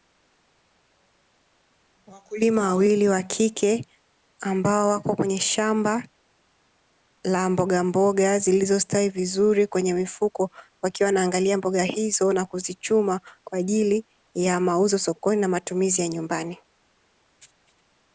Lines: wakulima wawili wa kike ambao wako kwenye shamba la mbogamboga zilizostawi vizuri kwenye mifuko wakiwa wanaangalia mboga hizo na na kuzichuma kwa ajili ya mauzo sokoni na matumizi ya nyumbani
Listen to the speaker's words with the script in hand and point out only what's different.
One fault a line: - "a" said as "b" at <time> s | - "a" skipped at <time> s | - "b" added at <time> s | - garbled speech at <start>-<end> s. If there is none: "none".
- "na" skipped at 12.4 s